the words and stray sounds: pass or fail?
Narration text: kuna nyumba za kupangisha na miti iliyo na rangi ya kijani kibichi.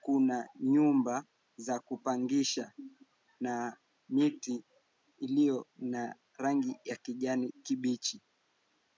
pass